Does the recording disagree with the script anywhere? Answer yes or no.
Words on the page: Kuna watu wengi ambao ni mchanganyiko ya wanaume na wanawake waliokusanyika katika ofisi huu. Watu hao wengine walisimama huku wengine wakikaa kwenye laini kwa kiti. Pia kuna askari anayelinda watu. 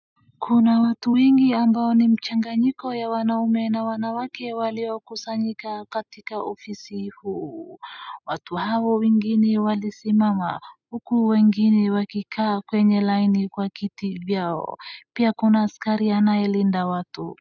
yes